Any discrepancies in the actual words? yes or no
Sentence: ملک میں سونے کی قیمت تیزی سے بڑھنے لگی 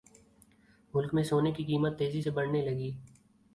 no